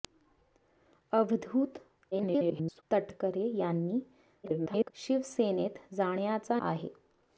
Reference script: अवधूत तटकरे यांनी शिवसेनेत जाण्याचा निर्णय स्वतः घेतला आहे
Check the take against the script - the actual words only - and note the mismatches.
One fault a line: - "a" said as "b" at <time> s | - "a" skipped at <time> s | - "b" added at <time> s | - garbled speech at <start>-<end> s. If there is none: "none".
- garbled speech at 2.1-2.8 s
- garbled speech at 4.4-4.9 s
- "निर्णय स्वतः घेतला" skipped at 6.6 s